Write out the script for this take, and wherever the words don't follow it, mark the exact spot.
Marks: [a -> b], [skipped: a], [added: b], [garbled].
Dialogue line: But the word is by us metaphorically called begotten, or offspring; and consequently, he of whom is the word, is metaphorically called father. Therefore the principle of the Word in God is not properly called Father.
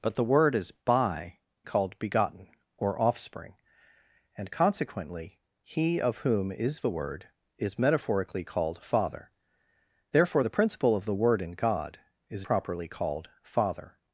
But the word is by [skipped: us metaphorically] called begotten, or offspring; and consequently, he of whom is the word, is metaphorically called father. Therefore the principle of the Word in God is [skipped: not] properly called Father.